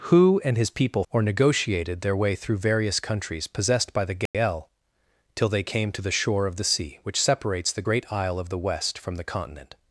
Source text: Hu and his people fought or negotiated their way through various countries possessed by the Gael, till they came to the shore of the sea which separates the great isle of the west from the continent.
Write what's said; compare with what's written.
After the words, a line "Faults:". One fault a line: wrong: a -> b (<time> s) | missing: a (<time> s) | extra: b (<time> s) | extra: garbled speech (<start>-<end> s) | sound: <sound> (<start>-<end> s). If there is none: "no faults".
Hu and his people or negotiated their way through various countries possessed by the Gael, till they came to the shore of the sea which separates the great isle of the west from the continent.
Faults:
missing: fought (1.0 s)
sound: dropout (4.3-4.3 s)